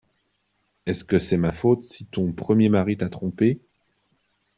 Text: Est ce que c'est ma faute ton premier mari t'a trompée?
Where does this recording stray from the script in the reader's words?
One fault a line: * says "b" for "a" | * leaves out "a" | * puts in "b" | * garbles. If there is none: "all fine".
* puts in "si"